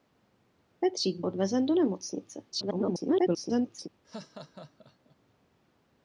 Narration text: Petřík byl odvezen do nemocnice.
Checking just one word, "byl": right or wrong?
wrong